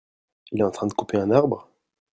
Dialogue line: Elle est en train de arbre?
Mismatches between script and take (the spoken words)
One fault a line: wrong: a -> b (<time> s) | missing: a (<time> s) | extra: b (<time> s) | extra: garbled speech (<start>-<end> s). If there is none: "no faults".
wrong: Elle -> Il (0.5 s)
extra: couper un (0.9 s)